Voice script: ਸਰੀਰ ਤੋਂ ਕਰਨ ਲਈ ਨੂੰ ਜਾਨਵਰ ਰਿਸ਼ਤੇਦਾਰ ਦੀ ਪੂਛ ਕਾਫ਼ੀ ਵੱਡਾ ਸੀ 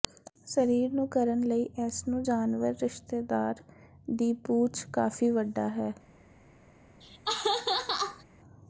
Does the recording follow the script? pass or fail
fail